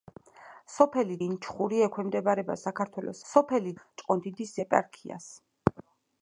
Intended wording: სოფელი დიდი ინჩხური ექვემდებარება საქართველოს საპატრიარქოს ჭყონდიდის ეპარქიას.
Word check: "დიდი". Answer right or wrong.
wrong